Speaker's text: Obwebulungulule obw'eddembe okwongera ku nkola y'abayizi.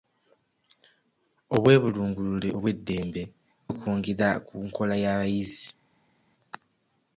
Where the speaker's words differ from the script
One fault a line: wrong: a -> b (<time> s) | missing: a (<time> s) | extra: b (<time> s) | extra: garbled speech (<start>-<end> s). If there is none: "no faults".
no faults